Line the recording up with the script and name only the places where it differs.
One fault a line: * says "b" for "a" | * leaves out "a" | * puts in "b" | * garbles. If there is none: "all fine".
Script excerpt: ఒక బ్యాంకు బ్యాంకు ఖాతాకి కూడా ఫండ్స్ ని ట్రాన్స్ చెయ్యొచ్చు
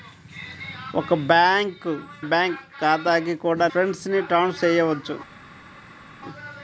all fine